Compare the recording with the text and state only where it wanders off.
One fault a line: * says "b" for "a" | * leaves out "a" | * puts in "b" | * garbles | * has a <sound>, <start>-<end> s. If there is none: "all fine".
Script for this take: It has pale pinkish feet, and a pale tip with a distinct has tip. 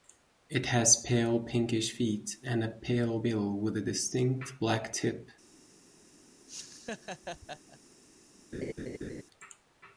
* says "bill" for "tip"
* says "black" for "has"
* has a laugh, 6.5-7.8 s
* has a laugh, 8.5-9.2 s